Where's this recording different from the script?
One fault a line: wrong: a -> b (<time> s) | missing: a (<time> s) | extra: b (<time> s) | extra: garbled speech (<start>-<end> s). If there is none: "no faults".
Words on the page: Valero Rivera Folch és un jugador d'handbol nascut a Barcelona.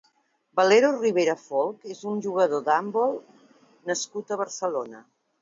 no faults